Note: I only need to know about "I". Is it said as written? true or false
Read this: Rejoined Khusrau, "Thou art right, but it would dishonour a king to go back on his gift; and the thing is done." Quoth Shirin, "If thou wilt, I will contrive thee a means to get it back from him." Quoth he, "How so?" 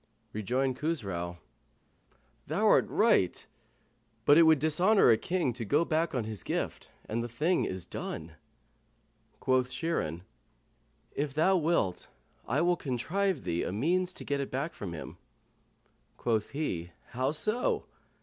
true